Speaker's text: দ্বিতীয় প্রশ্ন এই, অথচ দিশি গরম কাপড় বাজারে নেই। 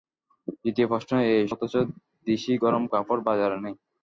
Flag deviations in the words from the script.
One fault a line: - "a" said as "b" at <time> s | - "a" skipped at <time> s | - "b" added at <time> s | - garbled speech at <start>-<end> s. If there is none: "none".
none